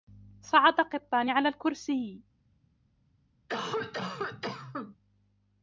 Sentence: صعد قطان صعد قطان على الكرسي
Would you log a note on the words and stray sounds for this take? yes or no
yes